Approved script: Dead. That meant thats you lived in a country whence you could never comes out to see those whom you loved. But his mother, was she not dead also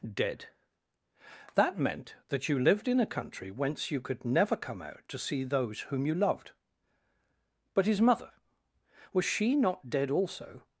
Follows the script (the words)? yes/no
no